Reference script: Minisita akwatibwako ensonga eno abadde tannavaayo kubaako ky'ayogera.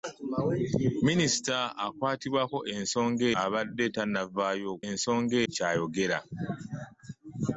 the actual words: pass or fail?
fail